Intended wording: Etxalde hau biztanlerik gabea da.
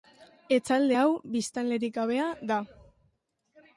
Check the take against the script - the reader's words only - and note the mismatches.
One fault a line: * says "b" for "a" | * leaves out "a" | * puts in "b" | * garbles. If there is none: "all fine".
all fine